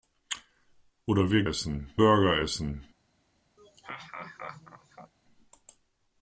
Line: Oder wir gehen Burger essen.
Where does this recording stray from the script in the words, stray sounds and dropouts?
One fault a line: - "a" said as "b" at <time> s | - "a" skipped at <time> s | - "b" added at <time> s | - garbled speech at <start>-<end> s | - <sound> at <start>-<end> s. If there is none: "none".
- "gehen" said as "essen" at 1.5 s
- laugh at 3.6-5.1 s